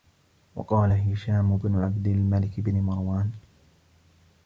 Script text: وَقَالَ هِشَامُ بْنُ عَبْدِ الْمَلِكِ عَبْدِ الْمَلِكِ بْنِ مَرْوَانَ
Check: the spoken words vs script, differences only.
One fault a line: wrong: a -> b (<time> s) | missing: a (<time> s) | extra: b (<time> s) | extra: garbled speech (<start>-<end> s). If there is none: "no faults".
missing: عَبْدِ الْمَلِكِ (2.6 s)